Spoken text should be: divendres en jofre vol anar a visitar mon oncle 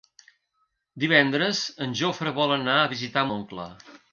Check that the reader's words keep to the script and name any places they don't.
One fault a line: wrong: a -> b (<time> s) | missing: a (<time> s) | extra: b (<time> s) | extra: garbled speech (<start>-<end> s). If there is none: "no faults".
missing: mon (3.3 s)